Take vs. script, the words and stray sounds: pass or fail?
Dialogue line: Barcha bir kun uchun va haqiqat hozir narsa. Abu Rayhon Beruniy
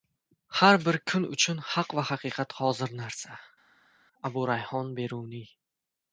fail